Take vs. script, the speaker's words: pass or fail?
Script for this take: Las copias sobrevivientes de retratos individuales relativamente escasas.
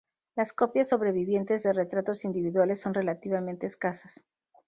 fail